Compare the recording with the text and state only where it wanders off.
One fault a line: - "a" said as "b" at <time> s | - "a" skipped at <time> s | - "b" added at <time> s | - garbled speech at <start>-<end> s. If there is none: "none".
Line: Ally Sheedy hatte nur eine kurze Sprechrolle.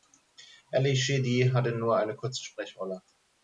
none